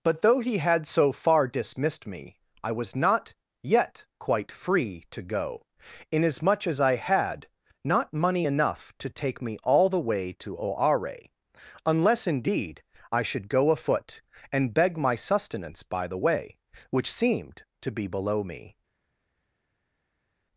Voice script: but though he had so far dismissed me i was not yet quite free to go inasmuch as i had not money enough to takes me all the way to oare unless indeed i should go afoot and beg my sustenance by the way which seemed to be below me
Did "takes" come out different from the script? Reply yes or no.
yes